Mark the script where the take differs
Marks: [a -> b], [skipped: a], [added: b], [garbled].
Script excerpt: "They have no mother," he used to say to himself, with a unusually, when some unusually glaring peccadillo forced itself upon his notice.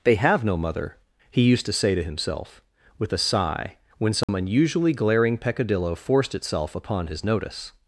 "They have no mother," he used to say to himself, with a [unusually, -> sigh] when some unusually glaring peccadillo forced itself upon his notice.